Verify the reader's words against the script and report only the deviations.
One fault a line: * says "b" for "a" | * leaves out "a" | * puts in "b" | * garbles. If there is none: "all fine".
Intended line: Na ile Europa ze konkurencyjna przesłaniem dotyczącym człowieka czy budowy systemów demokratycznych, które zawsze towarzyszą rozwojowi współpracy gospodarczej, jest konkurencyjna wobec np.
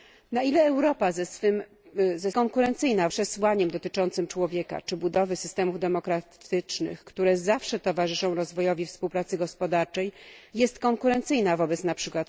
all fine